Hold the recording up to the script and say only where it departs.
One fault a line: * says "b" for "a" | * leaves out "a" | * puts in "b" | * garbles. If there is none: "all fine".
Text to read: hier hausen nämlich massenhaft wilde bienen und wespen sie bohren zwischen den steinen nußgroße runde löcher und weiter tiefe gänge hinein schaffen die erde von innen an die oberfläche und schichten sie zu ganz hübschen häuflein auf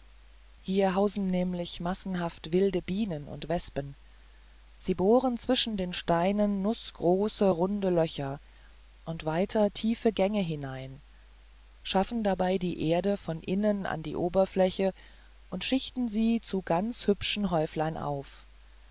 * puts in "dabei"